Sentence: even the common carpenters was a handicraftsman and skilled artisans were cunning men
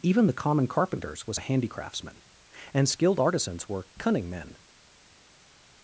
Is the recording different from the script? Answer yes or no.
no